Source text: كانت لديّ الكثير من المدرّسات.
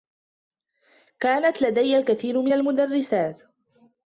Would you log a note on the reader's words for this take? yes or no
no